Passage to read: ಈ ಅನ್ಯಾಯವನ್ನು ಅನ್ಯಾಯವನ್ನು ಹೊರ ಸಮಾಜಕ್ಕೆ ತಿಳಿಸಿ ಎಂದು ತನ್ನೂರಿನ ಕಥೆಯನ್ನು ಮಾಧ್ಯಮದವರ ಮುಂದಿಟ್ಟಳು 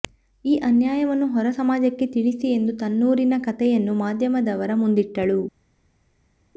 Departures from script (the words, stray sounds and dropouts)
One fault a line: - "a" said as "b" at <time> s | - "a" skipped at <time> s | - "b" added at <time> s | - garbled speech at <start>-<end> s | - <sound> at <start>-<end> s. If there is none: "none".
- "ಅನ್ಯಾಯವನ್ನು" skipped at 1.3 s